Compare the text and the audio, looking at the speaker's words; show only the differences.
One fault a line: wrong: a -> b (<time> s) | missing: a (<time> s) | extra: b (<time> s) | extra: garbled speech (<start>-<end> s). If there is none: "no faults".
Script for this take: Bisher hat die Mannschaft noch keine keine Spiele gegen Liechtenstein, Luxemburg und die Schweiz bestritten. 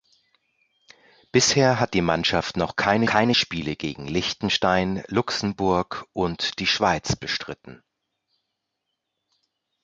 no faults